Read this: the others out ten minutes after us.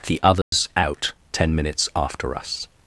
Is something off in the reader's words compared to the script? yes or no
no